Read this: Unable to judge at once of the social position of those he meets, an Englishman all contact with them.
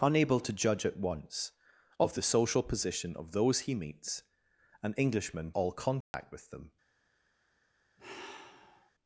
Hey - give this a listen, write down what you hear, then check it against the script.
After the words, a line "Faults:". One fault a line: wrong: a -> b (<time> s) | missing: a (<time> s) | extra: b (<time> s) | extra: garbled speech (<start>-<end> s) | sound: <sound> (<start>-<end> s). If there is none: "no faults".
Unable to judge at once of the social position of those he meets, an Englishman all contact with them.
Faults:
sound: dropout (6.0-6.1 s)
sound: sigh (8.0-8.9 s)